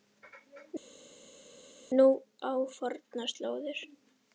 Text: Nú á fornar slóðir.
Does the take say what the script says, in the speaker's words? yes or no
yes